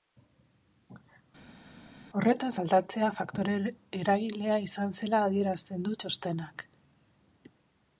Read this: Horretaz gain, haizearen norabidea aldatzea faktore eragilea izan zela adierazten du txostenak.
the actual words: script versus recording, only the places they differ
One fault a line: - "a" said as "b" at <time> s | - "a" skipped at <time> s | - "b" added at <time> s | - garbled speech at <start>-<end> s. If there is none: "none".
- "gain haizearen norabidea" skipped at 2.5 s